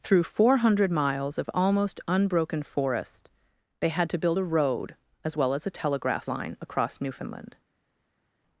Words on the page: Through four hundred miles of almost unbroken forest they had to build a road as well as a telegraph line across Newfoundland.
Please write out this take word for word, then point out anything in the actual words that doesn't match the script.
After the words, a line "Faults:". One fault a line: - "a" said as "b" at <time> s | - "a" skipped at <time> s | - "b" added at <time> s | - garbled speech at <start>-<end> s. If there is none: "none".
Through four hundred miles of almost unbroken forest they had to build a road as well as a telegraph line across Newfoundland.
Faults:
none